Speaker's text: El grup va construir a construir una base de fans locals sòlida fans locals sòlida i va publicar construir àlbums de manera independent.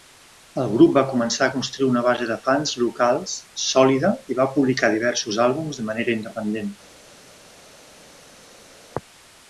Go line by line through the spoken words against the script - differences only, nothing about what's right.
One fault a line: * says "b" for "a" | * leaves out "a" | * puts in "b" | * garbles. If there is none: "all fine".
* says "començar" for "construir"
* leaves out "fans locals sòlida"
* says "diversos" for "construir"